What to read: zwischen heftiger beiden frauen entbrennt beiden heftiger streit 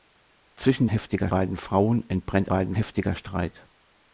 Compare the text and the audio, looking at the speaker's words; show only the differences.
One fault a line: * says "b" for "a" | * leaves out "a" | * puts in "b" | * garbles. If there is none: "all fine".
all fine